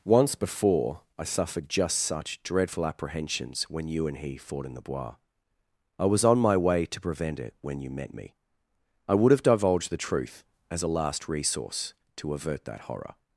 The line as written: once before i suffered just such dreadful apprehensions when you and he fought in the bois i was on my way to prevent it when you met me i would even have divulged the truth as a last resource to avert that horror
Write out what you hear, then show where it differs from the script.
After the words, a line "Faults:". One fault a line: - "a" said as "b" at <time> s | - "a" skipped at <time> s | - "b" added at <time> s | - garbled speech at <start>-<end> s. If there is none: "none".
once before i suffered just such dreadful apprehensions when you and he fought in the bois i was on my way to prevent it when you met me i would have divulged the truth as a last resource to avert that horror
Faults:
- "even" skipped at 9.3 s